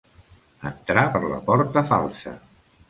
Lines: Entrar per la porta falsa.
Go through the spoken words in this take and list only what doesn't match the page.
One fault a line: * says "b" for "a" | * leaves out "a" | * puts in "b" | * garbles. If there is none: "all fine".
all fine